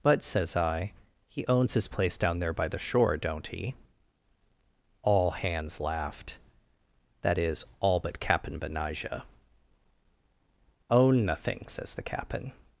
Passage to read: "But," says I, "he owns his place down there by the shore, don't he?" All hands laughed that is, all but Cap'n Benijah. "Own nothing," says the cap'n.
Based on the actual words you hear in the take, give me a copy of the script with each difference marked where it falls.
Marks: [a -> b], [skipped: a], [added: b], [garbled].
"But," says I, "he owns his place down there by the shore, don't he?" All hands laughed that is, all but Cap'n Benijah. "Own nothing," says the cap'n.